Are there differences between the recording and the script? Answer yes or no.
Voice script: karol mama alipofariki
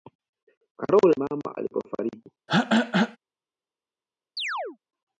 no